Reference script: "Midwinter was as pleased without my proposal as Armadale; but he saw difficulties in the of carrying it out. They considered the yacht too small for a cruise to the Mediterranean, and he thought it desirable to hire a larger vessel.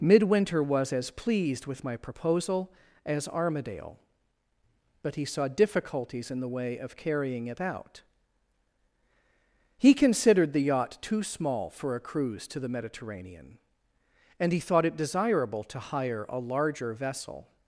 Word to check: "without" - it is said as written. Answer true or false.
false